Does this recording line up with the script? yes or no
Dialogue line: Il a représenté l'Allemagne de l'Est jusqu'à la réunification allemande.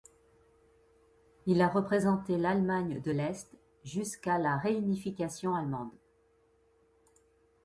yes